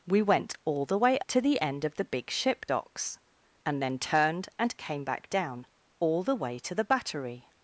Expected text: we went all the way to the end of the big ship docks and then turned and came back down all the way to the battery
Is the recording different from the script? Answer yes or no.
no